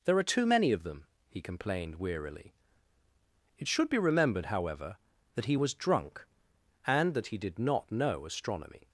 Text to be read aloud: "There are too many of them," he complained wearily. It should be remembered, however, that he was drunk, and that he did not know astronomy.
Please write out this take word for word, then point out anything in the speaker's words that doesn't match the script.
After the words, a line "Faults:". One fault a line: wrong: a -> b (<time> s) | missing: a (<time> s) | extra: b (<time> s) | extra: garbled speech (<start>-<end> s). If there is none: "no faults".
"There are too many of them," he complained wearily. It should be remembered, however, that he was drunk, and that he did not know astronomy.
Faults:
no faults